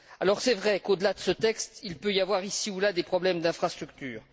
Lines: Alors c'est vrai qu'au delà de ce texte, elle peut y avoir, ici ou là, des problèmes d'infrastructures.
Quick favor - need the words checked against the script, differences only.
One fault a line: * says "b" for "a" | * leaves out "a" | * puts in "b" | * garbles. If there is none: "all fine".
* says "il" for "elle"